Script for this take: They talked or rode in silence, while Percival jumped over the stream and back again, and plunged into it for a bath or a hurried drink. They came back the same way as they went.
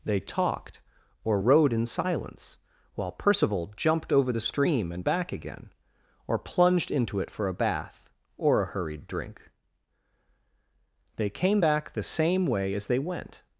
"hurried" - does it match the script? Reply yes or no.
yes